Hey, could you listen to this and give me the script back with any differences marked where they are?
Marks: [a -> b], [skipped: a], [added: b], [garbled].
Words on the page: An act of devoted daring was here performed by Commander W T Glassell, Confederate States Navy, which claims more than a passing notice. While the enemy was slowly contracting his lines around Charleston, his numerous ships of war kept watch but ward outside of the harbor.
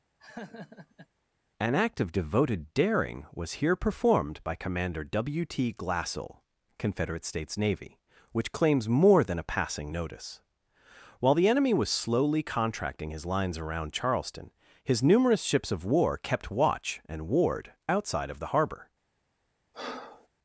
An act of devoted daring was here performed by Commander W T Glassell, Confederate States Navy, which claims more than a passing notice. While the enemy was slowly contracting his lines around Charleston, his numerous ships of war kept watch [but -> and] ward outside of the harbor.